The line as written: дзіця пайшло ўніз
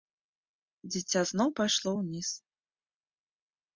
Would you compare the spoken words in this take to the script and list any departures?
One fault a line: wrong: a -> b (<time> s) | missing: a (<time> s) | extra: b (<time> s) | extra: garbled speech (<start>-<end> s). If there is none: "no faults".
extra: зноў (1.3 s)